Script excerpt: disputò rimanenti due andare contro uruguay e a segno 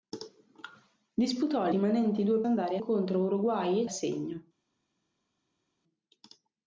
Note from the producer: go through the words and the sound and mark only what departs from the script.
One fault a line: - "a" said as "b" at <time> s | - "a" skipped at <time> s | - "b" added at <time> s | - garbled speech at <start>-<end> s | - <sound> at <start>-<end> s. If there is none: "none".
none